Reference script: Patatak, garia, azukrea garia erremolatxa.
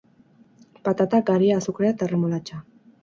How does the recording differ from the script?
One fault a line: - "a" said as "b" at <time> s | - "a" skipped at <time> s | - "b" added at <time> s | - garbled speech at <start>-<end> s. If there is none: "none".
- "garia" said as "eta" at 2.0 s